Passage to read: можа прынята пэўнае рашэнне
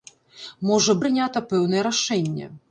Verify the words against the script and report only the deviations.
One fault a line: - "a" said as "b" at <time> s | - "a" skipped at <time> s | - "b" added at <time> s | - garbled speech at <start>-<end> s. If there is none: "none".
none